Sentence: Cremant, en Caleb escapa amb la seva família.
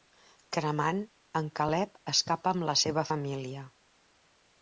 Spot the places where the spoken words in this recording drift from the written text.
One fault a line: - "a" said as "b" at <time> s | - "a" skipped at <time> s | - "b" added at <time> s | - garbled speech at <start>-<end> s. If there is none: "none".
none